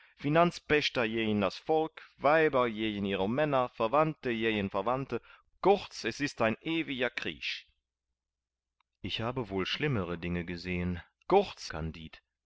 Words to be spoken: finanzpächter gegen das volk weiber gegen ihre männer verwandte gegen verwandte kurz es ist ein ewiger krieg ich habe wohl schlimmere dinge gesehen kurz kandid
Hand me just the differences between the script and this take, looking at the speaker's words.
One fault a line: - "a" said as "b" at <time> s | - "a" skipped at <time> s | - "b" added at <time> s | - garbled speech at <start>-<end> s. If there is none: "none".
none